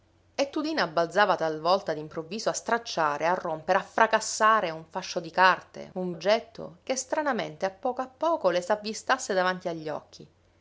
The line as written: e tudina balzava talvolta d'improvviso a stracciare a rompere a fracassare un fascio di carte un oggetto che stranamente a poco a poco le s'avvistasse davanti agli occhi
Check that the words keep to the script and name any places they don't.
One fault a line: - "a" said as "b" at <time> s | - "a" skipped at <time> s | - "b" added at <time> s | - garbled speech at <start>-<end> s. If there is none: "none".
none